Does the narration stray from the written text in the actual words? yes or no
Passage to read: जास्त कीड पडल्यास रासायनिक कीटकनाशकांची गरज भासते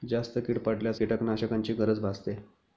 yes